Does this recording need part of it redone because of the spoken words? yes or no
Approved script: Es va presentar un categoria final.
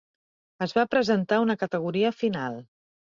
yes